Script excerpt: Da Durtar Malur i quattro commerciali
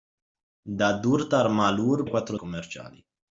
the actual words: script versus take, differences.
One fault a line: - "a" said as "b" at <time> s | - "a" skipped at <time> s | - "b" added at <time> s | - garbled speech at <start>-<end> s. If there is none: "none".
none